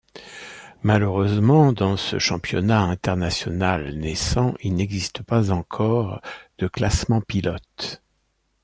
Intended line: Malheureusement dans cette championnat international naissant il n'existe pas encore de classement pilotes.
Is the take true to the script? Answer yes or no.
no